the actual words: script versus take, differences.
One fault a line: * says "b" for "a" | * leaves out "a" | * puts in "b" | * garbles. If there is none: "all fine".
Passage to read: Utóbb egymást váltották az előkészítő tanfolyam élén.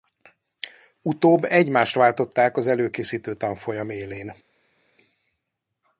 all fine